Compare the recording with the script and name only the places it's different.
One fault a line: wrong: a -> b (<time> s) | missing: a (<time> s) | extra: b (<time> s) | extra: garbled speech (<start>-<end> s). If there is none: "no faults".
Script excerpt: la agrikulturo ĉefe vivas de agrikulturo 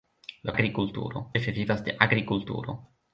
no faults